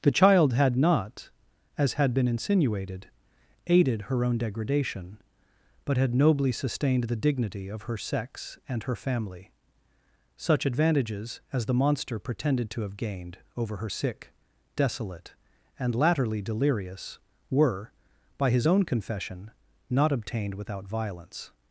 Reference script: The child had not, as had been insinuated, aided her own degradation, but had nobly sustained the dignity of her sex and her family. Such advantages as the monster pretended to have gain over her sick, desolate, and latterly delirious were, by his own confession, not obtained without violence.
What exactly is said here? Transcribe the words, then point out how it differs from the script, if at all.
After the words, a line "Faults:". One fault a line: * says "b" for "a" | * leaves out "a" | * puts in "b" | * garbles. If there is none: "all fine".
The child had not, as had been insinuated, aided her own degradation, but had nobly sustained the dignity of her sex and her family. Such advantages as the monster pretended to have gained over her sick, desolate, and latterly delirious were, by his own confession, not obtained without violence.
Faults:
* says "gained" for "gain"